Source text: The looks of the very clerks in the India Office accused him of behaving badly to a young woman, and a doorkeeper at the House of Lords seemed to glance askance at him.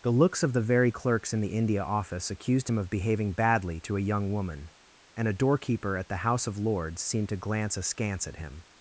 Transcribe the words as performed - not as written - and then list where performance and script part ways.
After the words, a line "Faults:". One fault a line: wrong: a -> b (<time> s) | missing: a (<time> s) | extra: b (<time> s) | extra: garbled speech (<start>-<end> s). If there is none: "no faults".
The looks of the very clerks in the India Office accused him of behaving badly to a young woman, and a doorkeeper at the House of Lords seemed to glance askance at him.
Faults:
no faults